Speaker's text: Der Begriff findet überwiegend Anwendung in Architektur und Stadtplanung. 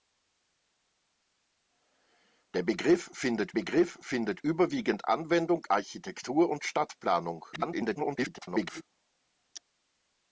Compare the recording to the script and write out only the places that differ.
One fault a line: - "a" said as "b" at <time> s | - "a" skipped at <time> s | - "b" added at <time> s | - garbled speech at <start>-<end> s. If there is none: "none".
- "Begriff findet" added at 3.5 s
- "in" skipped at 5.6 s
- garbled speech at 7.5-8.8 s